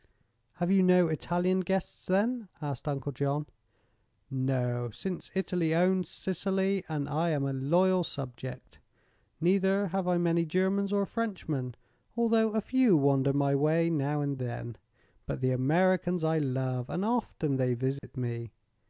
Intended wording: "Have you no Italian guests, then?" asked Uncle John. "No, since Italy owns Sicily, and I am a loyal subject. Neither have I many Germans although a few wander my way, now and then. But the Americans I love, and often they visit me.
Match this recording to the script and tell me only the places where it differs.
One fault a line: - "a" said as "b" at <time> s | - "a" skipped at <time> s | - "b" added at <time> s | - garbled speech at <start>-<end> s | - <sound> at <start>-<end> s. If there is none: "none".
- "or Frenchmen" added at 10.9 s
- dropout at 18.0-18.0 s